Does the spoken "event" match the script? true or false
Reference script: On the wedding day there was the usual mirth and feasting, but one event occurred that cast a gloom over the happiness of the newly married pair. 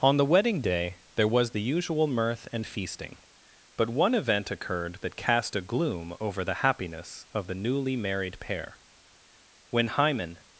true